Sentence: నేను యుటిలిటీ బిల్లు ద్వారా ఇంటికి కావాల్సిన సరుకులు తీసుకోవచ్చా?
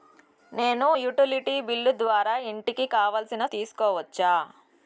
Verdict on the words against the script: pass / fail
fail